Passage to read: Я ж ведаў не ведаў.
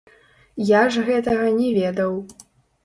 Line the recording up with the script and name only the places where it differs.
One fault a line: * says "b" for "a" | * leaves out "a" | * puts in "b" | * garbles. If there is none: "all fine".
* says "гэтага" for "ведаў"